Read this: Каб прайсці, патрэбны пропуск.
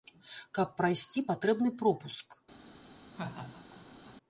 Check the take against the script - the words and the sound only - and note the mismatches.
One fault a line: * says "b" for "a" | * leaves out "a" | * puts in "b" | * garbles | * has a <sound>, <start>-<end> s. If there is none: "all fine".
* has a laugh, 3.1-4.2 s